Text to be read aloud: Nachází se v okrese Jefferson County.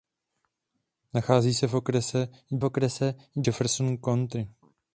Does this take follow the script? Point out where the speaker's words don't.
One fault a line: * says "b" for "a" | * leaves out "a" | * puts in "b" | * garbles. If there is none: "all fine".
* puts in "okrese"